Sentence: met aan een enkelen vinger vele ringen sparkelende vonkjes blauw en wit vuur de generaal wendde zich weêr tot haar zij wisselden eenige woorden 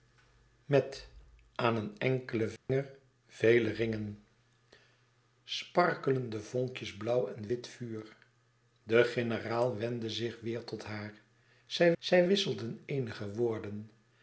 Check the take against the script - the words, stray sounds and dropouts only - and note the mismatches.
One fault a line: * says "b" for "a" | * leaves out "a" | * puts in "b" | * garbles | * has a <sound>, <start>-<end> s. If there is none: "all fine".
* has a dropout, 2.6-2.7 s
* puts in "zij"